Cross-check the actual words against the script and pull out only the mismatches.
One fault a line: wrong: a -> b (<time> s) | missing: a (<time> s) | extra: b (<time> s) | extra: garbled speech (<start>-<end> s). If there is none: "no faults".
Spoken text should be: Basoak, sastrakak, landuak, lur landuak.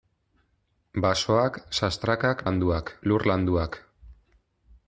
no faults